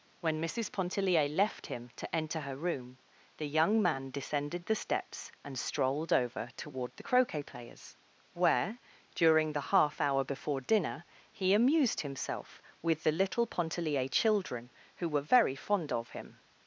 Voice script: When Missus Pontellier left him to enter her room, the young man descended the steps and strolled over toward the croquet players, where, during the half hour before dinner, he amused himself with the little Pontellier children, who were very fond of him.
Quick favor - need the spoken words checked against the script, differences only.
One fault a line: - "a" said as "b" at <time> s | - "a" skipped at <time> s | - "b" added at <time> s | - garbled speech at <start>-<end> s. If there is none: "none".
none